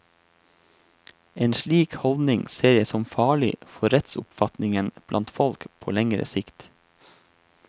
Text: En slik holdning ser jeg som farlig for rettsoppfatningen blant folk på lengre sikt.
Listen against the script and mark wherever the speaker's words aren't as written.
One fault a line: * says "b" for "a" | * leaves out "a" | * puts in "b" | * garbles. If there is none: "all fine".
all fine